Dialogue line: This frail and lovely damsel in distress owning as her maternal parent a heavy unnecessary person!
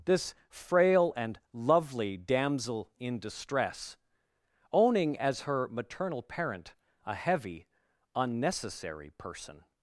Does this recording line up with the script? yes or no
yes